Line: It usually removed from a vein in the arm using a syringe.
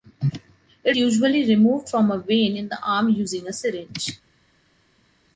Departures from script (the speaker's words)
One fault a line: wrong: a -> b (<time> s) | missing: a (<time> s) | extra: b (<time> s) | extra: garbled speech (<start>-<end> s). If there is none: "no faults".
no faults